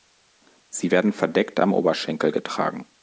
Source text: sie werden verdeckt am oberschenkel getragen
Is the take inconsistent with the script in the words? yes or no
no